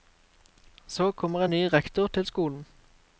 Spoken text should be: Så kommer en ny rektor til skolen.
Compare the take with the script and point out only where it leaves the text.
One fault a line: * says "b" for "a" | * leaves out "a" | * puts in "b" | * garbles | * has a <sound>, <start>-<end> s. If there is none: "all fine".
all fine